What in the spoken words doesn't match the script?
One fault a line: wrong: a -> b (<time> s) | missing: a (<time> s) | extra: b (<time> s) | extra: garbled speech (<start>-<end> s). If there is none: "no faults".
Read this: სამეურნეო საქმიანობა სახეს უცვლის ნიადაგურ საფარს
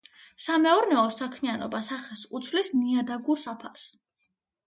no faults